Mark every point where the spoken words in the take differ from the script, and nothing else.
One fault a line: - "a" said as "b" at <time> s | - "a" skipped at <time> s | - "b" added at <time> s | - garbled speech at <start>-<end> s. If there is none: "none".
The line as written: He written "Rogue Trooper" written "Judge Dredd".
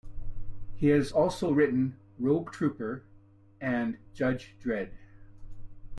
- "has also" added at 0.9 s
- "written" said as "and" at 3.6 s